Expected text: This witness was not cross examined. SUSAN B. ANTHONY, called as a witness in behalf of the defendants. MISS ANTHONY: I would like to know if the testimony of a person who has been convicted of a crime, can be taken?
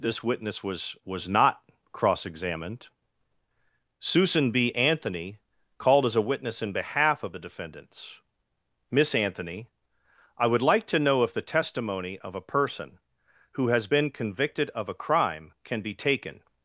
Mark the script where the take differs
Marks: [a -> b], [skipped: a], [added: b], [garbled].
This witness was [added: was] not cross examined. SUSAN B. ANTHONY, called as a witness in behalf of the defendants. MISS ANTHONY: I would like to know if the testimony of a person who has been convicted of a crime, can be taken?